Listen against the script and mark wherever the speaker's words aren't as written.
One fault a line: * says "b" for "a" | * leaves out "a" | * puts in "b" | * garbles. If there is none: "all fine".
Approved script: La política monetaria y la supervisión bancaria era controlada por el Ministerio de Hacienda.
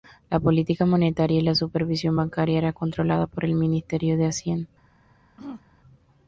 all fine